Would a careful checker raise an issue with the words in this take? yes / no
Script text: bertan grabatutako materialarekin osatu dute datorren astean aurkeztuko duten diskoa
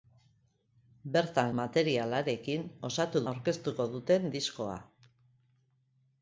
yes